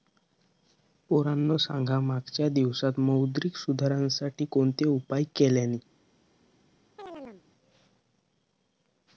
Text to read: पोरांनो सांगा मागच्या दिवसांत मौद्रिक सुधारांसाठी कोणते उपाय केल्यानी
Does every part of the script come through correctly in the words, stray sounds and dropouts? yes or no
no